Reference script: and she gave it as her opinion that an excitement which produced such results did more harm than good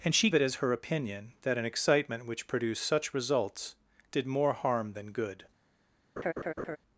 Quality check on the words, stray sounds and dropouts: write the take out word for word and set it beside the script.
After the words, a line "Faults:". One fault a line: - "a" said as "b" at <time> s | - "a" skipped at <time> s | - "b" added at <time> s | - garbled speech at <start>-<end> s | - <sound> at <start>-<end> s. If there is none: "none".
and she it as her opinion that an excitement which produced such results did more harm than good
Faults:
- "gave" skipped at 0.3 s
- laugh at 6.2-6.8 s